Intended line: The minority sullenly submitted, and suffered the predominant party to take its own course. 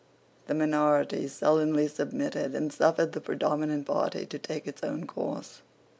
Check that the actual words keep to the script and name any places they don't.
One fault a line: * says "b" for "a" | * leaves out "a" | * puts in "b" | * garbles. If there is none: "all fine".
all fine